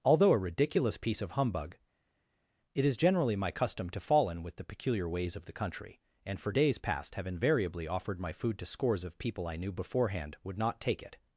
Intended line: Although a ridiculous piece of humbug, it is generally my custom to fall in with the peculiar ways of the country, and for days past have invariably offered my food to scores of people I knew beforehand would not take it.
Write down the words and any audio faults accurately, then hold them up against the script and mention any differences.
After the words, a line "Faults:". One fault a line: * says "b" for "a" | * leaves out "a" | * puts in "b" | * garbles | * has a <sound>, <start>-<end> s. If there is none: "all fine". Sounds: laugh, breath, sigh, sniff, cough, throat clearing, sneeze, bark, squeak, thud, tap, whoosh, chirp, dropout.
Although a ridiculous piece of humbug, it is generally my custom to fall in with the peculiar ways of the country, and for days past have invariably offered my food to scores of people I knew beforehand would not take it.
Faults:
all fine